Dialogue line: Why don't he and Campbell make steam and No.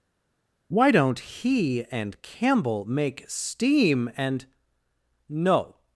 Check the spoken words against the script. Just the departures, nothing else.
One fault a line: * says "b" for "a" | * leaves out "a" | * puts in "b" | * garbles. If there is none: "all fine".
all fine